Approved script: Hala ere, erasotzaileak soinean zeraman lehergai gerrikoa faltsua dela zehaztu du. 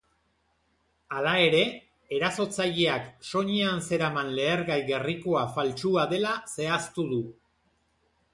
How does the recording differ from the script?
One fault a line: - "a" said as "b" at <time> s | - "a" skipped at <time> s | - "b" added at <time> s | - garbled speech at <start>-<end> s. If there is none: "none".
none